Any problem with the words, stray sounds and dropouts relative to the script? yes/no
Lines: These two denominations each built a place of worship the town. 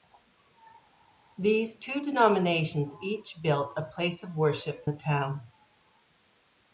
no